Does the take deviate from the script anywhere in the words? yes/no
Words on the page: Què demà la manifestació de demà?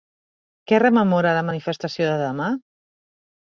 yes